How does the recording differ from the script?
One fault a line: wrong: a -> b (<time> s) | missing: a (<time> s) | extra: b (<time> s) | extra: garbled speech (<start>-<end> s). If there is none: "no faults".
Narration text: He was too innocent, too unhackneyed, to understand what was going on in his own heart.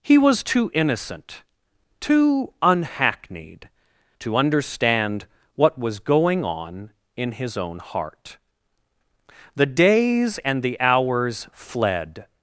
extra: The days and the hours fled (9.6 s)